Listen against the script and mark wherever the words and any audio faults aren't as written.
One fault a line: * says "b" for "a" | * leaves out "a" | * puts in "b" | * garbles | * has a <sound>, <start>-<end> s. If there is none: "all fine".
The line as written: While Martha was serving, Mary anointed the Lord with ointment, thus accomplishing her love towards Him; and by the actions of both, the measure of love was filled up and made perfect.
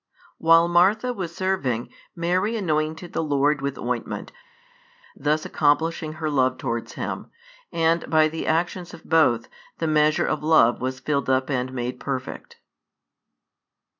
all fine